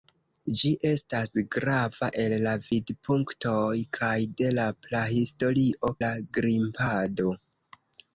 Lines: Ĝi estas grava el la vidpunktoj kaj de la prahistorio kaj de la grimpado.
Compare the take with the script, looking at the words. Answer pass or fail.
fail